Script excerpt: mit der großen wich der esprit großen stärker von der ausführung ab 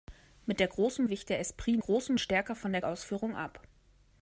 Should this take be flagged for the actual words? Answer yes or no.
no